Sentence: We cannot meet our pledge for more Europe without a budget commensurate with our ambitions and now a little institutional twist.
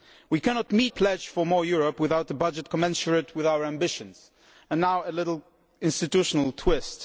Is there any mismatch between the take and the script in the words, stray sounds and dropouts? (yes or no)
yes